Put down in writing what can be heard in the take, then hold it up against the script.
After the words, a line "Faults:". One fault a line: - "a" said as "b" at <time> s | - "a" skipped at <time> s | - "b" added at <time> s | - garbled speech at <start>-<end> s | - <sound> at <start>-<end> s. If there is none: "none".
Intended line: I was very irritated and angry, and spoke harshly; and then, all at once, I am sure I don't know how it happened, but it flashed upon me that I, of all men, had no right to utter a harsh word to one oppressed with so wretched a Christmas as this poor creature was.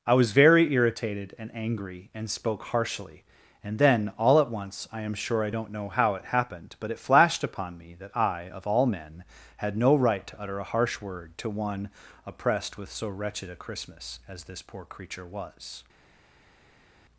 I was very irritated and angry, and spoke harshly; and then, all at once, I am sure I don't know how it happened, but it flashed upon me that I, of all men, had no right to utter a harsh word to one oppressed with so wretched a Christmas as this poor creature was.
Faults:
none